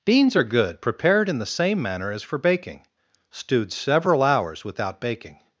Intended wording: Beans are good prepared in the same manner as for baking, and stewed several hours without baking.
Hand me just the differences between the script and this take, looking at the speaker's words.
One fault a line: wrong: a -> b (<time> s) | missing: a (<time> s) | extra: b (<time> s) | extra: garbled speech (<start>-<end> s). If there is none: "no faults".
missing: and (2.9 s)